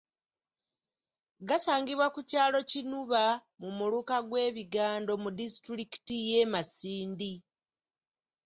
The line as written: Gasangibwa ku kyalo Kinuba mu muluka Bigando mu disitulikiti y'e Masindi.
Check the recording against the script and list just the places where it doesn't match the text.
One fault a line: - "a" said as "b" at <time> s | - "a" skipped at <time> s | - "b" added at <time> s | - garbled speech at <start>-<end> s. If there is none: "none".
- "gw'e" added at 4.3 s